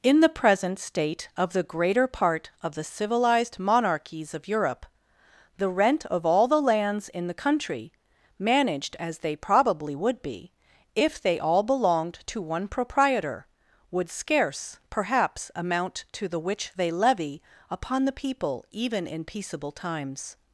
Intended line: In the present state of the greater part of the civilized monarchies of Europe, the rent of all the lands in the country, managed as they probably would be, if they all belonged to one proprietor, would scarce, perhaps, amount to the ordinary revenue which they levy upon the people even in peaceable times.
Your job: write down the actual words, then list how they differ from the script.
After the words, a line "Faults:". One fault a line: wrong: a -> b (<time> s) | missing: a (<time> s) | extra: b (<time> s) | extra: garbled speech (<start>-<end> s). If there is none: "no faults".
In the present state of the greater part of the civilized monarchies of Europe, the rent of all the lands in the country, managed as they probably would be, if they all belonged to one proprietor, would scarce, perhaps, amount to the which they levy upon the people even in peaceable times.
Faults:
missing: ordinary revenue (16.4 s)